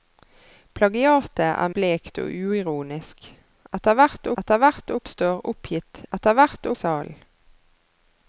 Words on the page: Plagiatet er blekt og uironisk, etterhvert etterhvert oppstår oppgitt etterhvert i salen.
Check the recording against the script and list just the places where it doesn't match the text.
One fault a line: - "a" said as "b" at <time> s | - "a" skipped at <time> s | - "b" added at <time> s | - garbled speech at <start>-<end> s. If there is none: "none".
none